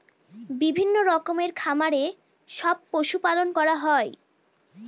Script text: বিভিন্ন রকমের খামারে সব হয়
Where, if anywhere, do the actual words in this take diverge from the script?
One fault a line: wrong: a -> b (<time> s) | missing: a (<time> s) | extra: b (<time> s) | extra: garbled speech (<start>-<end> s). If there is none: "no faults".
extra: পশু পালন করা (2.9 s)